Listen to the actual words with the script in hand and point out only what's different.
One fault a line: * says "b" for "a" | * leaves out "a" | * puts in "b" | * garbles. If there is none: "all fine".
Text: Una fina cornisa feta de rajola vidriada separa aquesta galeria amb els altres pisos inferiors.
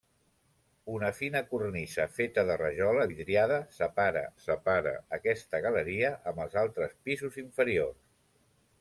* puts in "separa"